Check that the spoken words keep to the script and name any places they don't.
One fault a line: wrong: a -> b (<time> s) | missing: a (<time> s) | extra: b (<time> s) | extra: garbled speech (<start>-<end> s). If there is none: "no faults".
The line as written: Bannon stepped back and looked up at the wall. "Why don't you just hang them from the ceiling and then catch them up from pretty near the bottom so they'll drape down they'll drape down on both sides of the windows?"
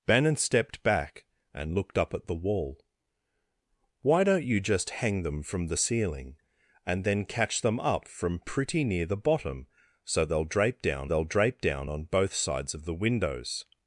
no faults